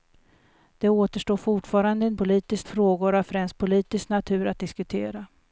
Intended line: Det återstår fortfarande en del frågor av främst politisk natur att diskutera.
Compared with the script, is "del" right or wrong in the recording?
wrong